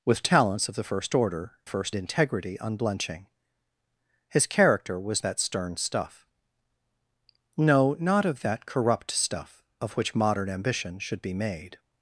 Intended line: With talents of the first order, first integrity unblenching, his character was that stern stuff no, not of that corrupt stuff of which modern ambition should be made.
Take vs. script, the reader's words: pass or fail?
pass